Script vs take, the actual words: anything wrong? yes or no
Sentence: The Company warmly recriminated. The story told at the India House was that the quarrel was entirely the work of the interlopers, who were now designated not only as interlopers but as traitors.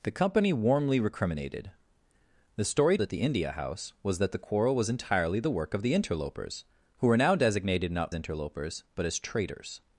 yes